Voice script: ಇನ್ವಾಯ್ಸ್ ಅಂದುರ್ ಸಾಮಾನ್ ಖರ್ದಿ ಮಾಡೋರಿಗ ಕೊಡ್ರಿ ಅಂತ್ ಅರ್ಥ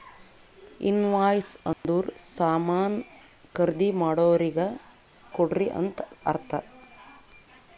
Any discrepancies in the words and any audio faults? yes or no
yes